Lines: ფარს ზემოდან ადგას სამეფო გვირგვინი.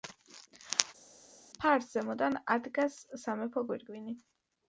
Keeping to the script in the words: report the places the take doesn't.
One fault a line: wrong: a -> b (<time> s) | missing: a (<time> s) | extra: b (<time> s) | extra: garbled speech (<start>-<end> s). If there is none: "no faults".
no faults